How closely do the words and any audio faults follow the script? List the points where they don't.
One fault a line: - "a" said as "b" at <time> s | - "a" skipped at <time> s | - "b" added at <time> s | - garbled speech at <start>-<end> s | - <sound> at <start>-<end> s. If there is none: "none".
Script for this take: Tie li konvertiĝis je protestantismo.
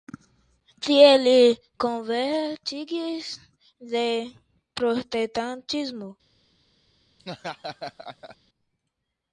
- laugh at 7.2-8.4 s